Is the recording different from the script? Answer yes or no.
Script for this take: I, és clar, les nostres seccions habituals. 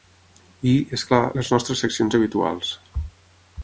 no